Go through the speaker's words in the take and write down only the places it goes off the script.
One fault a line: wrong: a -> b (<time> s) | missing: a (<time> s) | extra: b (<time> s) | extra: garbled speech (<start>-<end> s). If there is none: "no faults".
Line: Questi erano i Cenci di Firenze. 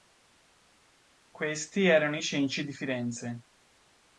no faults